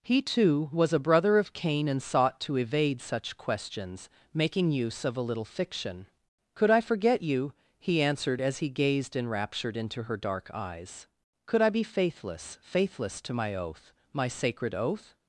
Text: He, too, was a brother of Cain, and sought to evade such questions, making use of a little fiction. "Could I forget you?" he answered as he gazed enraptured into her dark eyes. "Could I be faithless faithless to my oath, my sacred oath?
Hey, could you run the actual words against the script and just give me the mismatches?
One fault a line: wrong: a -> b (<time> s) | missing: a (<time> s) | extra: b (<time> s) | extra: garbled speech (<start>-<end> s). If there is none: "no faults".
no faults